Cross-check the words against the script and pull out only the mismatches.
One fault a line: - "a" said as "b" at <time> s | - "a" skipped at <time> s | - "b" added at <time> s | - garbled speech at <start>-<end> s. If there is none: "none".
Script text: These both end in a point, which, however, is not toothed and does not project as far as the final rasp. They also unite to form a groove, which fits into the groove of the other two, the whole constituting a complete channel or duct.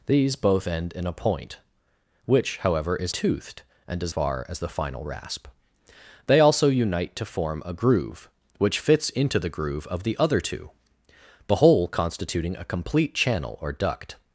- "not" skipped at 3.1 s
- "not project as" skipped at 4.1 s